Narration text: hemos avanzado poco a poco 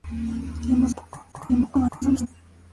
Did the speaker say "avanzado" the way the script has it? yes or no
no